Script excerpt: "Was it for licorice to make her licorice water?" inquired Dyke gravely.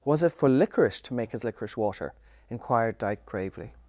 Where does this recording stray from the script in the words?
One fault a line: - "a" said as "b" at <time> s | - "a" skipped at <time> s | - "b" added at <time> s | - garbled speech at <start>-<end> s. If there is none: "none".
- "her" said as "his" at 1.3 s